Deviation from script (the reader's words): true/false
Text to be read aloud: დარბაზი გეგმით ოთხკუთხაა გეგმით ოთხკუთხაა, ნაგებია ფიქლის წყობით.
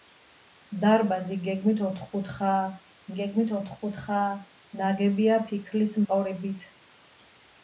false